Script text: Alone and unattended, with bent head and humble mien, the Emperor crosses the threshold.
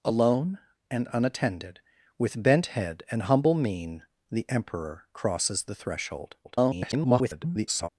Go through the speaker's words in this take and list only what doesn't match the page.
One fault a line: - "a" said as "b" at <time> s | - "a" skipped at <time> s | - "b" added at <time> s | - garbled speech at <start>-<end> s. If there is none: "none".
- garbled speech at 6.4-7.9 s